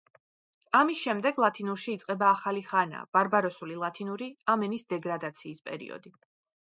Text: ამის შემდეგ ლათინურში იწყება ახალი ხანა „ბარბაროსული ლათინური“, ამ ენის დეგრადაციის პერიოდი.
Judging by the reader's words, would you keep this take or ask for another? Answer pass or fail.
pass